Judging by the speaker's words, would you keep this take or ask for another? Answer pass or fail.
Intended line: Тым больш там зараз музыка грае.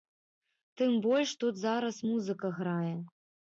fail